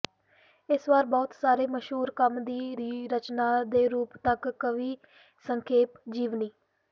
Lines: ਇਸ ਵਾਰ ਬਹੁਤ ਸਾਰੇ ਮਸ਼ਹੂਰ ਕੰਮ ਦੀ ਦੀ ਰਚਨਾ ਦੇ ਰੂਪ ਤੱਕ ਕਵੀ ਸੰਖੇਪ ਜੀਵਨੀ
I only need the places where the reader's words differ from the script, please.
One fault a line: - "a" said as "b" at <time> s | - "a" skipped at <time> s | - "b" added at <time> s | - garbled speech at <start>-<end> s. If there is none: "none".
none